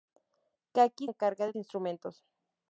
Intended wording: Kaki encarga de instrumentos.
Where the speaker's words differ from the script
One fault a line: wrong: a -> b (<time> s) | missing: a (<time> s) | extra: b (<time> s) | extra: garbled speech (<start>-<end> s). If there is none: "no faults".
no faults